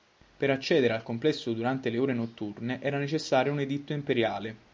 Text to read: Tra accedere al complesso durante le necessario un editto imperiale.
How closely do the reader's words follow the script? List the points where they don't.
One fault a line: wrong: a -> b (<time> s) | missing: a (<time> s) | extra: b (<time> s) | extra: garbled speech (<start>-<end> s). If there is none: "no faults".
wrong: Tra -> Per (0.3 s)
extra: ore notturne era (2.0 s)